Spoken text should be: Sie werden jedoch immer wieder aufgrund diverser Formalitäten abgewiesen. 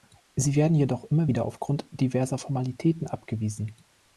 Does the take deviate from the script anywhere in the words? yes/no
no